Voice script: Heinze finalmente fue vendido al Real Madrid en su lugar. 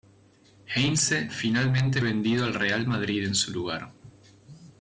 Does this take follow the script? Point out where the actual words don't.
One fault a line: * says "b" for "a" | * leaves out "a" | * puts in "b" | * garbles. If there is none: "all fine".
* leaves out "fue"